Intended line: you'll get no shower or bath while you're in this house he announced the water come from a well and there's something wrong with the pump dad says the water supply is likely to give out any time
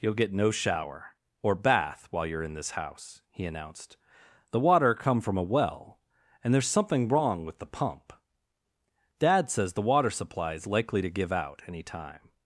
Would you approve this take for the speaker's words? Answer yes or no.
yes